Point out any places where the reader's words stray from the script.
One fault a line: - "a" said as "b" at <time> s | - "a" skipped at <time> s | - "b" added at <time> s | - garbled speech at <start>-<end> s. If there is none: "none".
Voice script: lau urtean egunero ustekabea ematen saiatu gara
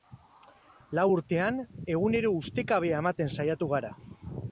none